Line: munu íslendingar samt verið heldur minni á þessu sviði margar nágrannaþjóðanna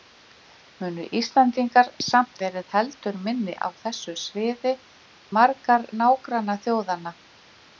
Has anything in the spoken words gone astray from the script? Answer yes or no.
no